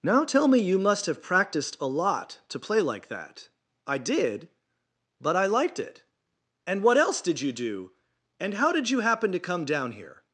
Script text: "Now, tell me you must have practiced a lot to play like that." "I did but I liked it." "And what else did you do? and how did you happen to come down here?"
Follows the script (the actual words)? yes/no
yes